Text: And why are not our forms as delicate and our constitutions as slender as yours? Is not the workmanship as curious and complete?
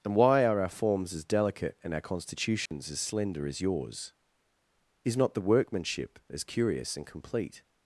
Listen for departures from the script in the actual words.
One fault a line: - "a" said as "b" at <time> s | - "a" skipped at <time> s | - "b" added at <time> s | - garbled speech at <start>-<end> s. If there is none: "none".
- "not" skipped at 0.6 s